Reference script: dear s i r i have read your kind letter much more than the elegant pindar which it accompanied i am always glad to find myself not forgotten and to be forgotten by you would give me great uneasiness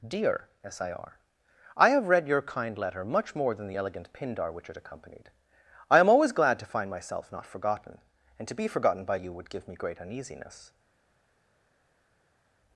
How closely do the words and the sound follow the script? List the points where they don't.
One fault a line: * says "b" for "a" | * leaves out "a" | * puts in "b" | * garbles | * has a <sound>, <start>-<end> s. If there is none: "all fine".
all fine